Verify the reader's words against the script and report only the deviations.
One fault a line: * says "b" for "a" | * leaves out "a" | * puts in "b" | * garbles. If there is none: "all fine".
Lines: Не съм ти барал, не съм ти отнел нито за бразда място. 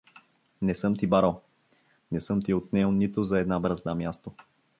* puts in "една"